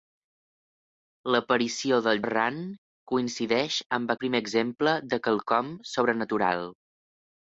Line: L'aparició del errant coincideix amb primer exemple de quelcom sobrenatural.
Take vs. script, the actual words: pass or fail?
pass